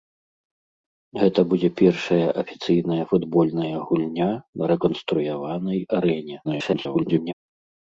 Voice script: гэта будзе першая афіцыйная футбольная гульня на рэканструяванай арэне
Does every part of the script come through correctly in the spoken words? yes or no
no